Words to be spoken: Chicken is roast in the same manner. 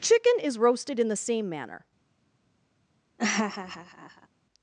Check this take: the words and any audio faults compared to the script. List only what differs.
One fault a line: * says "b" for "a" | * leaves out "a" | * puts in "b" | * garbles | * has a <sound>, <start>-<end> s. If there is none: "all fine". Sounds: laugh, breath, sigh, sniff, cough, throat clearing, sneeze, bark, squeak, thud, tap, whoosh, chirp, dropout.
* says "roasted" for "roast"
* has a laugh, 3.2-4.3 s